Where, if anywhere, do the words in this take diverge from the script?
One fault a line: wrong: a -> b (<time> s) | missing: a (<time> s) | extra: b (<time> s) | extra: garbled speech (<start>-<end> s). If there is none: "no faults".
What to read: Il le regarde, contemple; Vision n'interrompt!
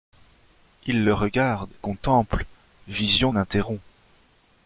no faults